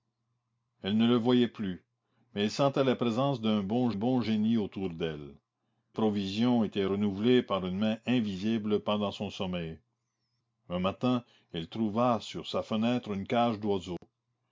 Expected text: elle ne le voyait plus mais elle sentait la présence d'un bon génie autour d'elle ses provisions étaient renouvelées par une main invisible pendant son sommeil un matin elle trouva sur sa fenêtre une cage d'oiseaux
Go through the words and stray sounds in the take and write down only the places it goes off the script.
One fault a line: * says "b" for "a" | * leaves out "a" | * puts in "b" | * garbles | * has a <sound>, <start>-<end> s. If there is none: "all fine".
* puts in "bon"
* leaves out "ses"
* has a dropout, 14.0-14.0 s